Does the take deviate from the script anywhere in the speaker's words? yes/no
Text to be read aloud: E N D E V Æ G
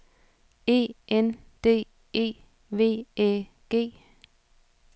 no